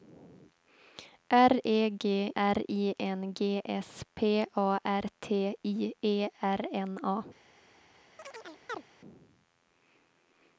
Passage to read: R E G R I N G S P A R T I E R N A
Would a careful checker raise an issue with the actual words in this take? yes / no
no